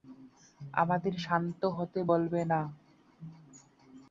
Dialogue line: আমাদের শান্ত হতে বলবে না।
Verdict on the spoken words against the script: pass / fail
pass